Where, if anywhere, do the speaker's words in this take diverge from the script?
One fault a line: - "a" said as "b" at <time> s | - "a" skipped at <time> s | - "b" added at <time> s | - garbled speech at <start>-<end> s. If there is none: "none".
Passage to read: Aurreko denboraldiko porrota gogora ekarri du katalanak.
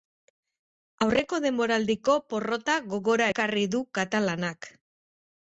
none